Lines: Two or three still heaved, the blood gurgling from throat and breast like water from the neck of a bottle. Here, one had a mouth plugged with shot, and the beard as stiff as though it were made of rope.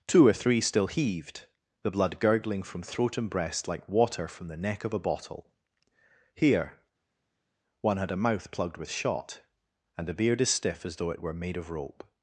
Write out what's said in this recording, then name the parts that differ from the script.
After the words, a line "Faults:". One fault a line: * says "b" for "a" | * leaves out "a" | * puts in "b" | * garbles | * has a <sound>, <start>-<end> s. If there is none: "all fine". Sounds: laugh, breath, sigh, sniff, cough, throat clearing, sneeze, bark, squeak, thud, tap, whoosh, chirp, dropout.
Two or three still heaved, the blood gurgling from throat and breast like water from the neck of a bottle. Here, one had a mouth plugged with shot, and the beard as stiff as though it were made of rope.
Faults:
all fine